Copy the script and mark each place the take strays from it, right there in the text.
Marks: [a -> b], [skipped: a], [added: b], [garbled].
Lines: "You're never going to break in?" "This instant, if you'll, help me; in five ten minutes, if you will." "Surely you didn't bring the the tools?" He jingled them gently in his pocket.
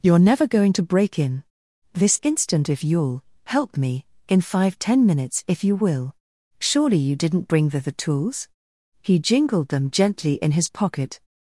"You're never going to break in?" "This instant, if you'll, help me; in five ten minutes, if you will." "Surely you didn't bring the the tools?" He jingled them gently in his pocket.